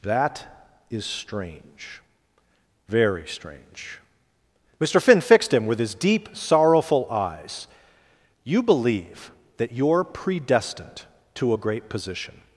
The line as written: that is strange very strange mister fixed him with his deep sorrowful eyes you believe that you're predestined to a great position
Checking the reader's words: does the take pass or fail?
fail